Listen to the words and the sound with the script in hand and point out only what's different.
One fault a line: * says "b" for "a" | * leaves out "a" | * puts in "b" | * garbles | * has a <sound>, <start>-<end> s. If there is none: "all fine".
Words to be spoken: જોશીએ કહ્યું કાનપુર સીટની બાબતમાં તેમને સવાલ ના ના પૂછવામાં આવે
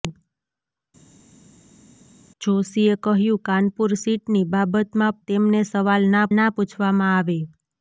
all fine